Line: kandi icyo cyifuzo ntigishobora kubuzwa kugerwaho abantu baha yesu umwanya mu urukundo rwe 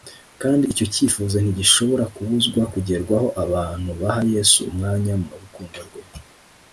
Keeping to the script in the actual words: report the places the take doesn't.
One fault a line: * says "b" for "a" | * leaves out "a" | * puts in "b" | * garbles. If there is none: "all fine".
all fine